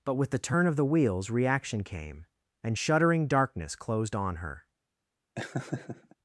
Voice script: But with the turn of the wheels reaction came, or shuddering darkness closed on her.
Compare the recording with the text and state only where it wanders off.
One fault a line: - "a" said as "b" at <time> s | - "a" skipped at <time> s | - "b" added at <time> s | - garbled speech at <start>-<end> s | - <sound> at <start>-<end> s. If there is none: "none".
- "or" said as "and" at 2.6 s
- laugh at 5.4-6.2 s